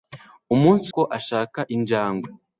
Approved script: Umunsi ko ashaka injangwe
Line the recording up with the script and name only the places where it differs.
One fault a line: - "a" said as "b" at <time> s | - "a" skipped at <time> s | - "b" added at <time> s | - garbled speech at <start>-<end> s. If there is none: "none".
none